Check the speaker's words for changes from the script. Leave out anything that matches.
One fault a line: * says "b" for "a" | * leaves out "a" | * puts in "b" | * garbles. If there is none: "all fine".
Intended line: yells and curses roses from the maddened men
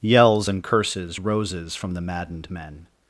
all fine